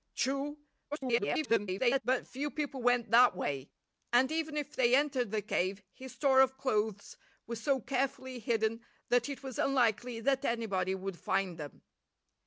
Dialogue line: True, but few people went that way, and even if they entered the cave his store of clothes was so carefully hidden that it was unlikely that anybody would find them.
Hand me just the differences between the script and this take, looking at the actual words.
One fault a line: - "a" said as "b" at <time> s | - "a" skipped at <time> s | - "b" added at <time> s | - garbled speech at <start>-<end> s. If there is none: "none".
- garbled speech at 0.9-2.0 s